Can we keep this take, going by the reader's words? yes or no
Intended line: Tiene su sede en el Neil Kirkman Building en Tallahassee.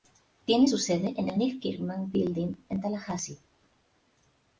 yes